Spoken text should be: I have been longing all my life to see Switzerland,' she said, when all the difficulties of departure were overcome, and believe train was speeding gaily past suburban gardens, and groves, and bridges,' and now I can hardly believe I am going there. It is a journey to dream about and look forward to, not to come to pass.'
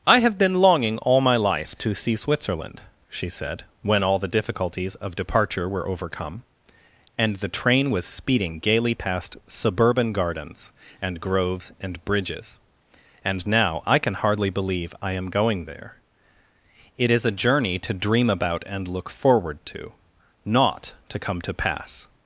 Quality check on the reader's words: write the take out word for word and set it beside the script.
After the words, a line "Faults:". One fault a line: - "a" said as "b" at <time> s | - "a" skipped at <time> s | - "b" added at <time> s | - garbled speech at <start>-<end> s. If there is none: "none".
I have been longing all my life to see Switzerland,' she said, when all the difficulties of departure were overcome, and the train was speeding gaily past suburban gardens, and groves, and bridges,' and now I can hardly believe I am going there. It is a journey to dream about and look forward to, not to come to pass.'
Faults:
- "believe" said as "the" at 7.3 s